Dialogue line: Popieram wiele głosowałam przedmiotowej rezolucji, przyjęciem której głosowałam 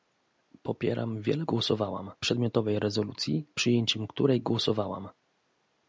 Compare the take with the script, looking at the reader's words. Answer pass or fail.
pass